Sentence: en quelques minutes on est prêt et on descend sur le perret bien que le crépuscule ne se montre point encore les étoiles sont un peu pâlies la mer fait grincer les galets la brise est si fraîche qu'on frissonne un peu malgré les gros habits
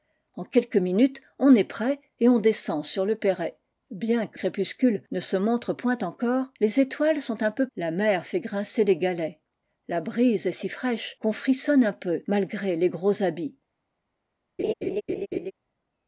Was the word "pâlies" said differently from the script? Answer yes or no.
yes